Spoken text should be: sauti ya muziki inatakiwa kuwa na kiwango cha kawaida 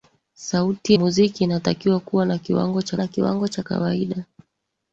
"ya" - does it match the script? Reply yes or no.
no